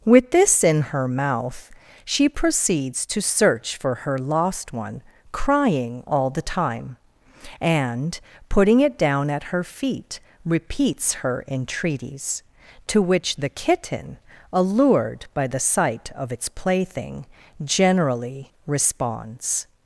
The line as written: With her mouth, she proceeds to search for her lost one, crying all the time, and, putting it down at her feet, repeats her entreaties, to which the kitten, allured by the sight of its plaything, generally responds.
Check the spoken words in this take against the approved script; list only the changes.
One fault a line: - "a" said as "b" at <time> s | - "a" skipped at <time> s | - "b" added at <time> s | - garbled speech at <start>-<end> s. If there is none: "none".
- "this in" added at 0.3 s